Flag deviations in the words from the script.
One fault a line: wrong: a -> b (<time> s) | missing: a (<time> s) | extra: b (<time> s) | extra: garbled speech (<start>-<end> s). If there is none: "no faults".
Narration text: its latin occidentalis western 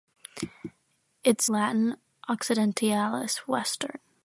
no faults